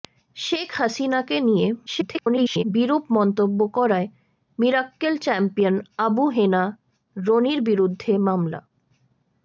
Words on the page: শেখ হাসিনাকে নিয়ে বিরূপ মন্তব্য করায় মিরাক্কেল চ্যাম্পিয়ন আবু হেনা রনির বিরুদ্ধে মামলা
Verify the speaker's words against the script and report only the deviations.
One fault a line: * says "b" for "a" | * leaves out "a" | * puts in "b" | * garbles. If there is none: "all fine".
* garbles